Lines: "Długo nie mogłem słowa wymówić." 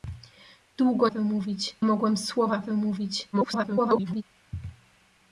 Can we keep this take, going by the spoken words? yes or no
no